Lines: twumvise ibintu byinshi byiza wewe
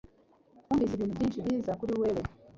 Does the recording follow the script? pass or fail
fail